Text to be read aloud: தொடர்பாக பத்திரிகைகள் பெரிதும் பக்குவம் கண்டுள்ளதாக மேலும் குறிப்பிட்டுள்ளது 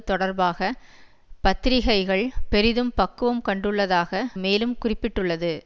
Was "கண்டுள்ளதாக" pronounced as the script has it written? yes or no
yes